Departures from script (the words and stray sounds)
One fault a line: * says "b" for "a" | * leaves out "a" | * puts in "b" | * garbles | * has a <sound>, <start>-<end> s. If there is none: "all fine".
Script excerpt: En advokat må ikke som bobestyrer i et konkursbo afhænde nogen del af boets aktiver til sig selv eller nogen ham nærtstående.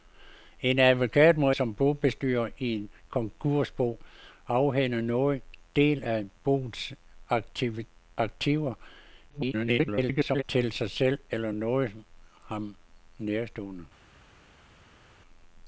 * leaves out "ikke"
* garbles